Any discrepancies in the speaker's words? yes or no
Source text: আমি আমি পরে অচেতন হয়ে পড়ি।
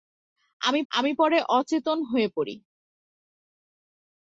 no